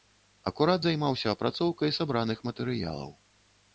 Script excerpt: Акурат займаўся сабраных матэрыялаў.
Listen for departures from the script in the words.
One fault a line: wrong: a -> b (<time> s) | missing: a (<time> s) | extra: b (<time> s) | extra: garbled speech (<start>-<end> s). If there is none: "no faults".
extra: апрацоўкай (1.4 s)